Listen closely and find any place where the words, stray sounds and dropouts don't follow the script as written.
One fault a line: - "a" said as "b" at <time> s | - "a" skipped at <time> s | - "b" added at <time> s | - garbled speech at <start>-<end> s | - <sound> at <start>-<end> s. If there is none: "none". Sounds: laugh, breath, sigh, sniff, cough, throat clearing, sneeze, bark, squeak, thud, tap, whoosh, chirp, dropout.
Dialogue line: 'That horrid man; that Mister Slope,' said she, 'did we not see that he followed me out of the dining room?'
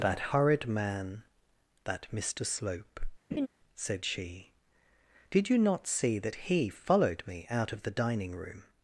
- laugh at 3.3-3.5 s
- "we" said as "you" at 5.5 s